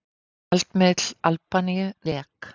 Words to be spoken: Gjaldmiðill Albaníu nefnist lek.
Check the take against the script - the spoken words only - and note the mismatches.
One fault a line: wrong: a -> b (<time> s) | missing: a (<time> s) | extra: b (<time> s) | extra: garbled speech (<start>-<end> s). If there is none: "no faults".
missing: nefnist (1.9 s)